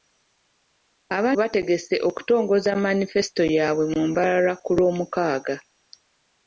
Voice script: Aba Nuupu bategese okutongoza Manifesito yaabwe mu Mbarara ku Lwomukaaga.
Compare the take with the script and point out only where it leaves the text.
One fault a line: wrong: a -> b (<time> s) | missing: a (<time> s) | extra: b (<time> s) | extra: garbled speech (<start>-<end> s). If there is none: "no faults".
missing: Nuupu (1.3 s)